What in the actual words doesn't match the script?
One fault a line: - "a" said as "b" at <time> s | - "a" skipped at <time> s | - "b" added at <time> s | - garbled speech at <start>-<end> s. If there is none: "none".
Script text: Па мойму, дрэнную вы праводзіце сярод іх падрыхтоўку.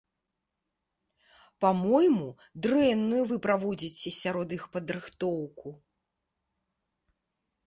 none